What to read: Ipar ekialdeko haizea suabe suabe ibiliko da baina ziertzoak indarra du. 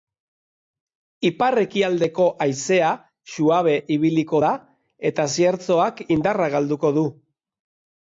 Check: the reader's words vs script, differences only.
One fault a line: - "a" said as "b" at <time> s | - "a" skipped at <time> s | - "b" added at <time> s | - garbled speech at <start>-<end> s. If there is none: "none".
- "suabe" skipped at 3.8 s
- "baina" said as "eta" at 5.1 s
- "galduko" added at 6.6 s